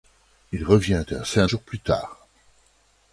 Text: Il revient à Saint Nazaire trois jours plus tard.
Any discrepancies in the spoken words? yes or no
yes